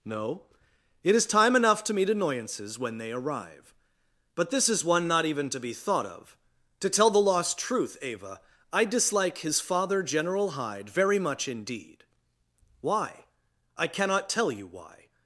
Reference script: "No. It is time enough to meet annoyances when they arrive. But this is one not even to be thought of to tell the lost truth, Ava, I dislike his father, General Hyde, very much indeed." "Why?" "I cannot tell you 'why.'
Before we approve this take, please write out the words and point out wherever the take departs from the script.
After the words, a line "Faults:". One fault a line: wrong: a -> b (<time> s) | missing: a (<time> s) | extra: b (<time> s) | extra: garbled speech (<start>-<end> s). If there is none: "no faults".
"No. It is time enough to meet annoyances when they arrive. But this is one not even to be thought of to tell the lost truth, Ava, I dislike his father, General Hyde, very much indeed." "Why?" "I cannot tell you 'why.'
Faults:
no faults